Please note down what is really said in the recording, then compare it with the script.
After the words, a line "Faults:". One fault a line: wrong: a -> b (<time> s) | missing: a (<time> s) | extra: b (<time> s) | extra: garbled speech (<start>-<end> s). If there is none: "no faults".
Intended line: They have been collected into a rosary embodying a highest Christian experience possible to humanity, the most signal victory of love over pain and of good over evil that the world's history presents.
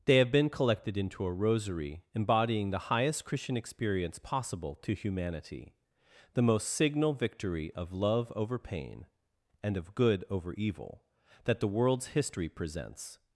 They have been collected into a rosary embodying the highest Christian experience possible to humanity, the most signal victory of love over pain and of good over evil that the world's history presents.
Faults:
wrong: a -> the (2.7 s)